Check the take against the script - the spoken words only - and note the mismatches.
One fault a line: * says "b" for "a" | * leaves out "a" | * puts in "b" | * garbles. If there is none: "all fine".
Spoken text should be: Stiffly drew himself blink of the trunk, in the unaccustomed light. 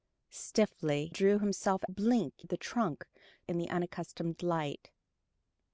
all fine